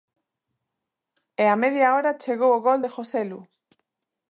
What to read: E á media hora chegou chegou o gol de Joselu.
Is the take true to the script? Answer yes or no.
no